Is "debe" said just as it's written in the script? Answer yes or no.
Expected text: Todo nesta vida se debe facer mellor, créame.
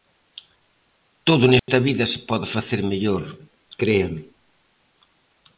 no